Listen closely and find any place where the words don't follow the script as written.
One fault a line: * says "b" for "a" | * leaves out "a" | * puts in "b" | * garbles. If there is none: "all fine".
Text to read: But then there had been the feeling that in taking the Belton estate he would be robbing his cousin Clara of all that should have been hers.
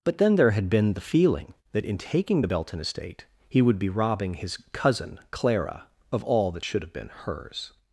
all fine